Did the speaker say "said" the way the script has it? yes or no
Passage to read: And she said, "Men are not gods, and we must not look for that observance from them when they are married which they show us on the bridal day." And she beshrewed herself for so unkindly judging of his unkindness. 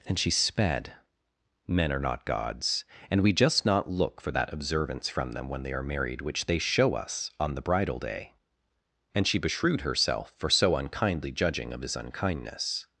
no